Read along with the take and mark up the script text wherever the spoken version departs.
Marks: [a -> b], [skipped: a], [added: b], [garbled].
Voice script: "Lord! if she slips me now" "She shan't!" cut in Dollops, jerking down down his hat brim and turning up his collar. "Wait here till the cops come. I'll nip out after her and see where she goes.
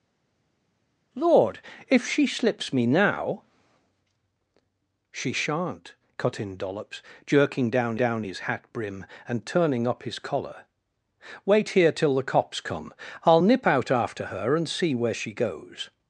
"Lord! if she slips me now" "She shan't!" cut in Dollops, jerking down down his hat brim and turning up his collar. "Wait here till the cops come. I'll nip out after her and see where she goes.